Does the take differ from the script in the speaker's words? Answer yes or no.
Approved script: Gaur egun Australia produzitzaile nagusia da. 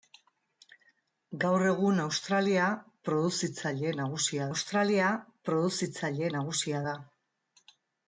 yes